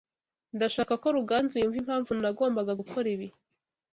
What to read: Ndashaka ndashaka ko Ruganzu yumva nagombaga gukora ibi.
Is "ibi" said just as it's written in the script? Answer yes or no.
yes